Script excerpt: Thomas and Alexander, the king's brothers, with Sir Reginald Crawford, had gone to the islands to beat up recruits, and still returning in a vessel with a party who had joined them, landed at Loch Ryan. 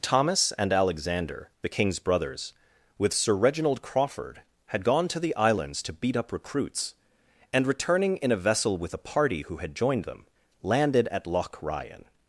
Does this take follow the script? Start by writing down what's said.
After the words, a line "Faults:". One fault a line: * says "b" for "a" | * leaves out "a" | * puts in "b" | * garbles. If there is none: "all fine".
Thomas and Alexander, the king's brothers, with Sir Reginald Crawford, had gone to the islands to beat up recruits, and returning in a vessel with a party who had joined them, landed at Loch Ryan.
Faults:
* leaves out "still"